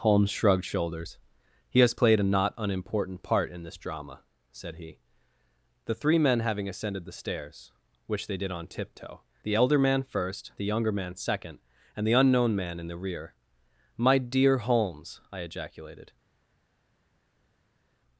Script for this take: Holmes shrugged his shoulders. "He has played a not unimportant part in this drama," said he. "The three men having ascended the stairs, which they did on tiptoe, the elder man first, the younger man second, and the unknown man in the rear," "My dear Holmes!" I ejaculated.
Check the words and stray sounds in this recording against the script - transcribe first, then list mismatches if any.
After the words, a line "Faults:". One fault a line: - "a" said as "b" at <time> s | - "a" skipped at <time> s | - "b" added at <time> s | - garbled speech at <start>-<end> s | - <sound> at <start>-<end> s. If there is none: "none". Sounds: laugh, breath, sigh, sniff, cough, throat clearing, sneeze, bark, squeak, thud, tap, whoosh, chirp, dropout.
Holmes shrugged shoulders. "He has played a not unimportant part in this drama," said he. "The three men having ascended the stairs, which they did on tiptoe, the elder man first, the younger man second, and the unknown man in the rear," "My dear Holmes!" I ejaculated.
Faults:
- "his" skipped at 0.7 s